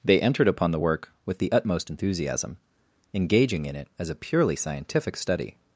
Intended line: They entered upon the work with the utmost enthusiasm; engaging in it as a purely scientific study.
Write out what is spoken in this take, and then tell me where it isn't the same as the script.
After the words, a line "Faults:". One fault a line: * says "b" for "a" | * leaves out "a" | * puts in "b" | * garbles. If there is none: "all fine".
They entered upon the work with the utmost enthusiasm; engaging in it as a purely scientific study.
Faults:
all fine